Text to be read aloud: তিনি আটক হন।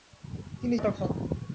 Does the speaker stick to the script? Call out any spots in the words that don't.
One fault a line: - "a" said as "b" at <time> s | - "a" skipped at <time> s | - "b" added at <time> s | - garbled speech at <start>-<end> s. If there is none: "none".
none